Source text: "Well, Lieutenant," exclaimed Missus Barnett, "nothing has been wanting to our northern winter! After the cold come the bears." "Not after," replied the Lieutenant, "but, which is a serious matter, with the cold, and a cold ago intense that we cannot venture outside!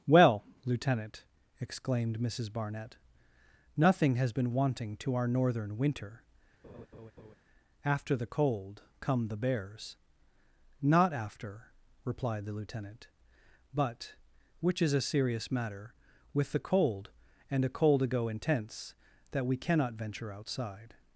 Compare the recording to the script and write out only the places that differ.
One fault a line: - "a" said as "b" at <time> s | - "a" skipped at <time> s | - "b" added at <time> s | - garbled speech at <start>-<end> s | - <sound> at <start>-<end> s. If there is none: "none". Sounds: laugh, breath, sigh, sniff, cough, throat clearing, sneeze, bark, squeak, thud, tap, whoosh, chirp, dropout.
- laugh at 6.6-7.4 s